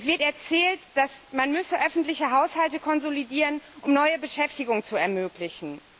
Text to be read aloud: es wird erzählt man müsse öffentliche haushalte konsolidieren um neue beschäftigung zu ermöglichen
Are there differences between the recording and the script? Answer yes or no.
no